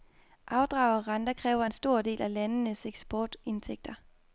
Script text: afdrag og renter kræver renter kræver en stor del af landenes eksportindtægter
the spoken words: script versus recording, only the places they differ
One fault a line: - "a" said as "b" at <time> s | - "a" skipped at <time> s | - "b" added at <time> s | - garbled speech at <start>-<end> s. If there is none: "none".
- "renter kræver" skipped at 1.6 s